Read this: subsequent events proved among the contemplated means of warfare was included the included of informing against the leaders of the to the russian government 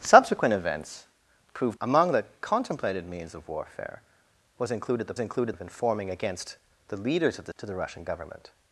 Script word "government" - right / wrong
right